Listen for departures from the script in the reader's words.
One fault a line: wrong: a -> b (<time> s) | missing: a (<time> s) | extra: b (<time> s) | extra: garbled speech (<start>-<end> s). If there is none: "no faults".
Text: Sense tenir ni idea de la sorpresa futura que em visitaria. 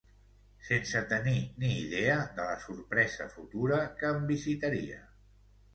no faults